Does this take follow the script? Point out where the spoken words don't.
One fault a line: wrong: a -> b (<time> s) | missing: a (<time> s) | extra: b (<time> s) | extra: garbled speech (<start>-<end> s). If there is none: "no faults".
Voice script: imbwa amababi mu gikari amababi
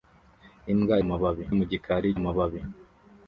no faults